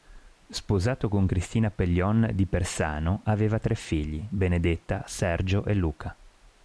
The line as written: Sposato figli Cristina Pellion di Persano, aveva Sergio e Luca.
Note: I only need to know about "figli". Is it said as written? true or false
false